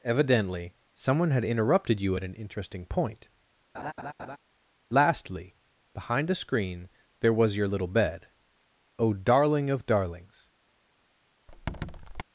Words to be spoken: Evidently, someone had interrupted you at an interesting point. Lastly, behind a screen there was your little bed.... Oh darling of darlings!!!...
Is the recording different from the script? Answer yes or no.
no